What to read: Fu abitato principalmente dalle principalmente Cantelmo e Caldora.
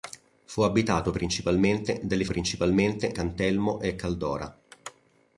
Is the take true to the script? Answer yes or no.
yes